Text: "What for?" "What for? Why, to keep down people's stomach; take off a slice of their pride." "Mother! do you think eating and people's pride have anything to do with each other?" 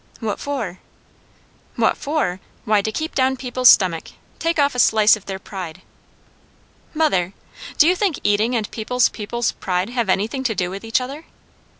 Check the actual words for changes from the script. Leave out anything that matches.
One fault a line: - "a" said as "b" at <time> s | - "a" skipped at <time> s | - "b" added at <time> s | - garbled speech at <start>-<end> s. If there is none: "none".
- "people's" added at 9.1 s